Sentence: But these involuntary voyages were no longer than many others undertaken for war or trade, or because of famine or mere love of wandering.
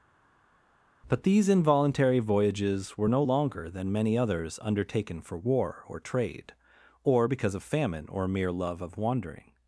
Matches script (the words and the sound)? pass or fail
pass